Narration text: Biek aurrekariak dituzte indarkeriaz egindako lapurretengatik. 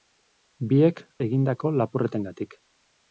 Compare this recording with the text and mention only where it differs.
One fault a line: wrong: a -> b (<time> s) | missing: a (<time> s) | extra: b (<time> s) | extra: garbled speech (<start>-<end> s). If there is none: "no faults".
missing: aurrekariak dituzte indarkeriaz (1.0 s)